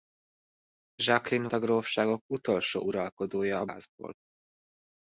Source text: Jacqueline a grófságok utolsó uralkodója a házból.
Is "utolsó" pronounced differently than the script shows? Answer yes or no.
no